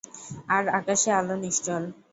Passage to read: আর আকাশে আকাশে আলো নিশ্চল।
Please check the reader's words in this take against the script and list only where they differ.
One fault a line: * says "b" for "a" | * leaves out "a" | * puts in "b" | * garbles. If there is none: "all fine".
* leaves out "আকাশে"